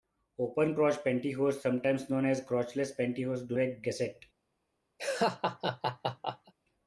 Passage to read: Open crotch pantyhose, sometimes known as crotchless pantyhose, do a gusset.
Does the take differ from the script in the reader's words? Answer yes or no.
no